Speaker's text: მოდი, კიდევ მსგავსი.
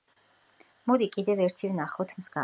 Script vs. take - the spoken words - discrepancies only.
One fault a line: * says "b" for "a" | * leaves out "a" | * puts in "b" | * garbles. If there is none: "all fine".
* puts in "ერთი ვნახოთ"